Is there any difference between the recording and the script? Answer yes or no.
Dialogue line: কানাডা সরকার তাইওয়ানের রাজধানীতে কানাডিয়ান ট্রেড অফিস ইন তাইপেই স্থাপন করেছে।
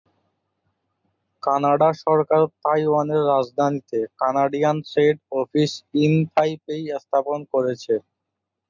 no